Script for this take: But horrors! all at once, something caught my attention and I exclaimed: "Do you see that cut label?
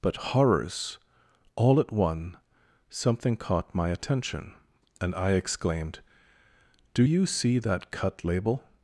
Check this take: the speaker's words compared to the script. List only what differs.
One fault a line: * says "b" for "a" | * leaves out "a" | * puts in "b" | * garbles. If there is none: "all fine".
* says "one" for "once"